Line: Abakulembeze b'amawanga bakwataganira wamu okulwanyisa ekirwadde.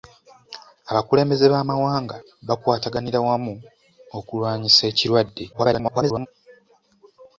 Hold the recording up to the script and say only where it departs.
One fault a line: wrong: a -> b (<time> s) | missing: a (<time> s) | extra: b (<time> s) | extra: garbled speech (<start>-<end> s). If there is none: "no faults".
extra: garbled speech (5.5-6.3 s)